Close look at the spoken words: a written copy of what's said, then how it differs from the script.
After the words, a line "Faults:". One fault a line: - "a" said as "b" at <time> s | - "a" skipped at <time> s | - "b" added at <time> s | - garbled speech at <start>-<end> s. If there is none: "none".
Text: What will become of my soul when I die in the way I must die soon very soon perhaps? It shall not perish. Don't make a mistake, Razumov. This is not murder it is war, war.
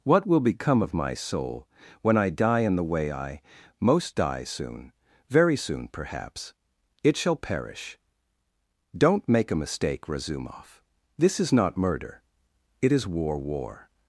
What will become of my soul when I die in the way I most die soon very soon perhaps? It shall perish. Don't make a mistake, Razumov. This is not murder it is war, war.
Faults:
- "must" said as "most" at 3.8 s
- "not" skipped at 7.4 s